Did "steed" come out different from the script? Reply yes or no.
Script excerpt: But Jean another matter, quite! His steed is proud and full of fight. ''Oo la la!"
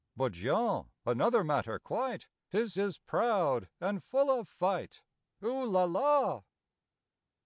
yes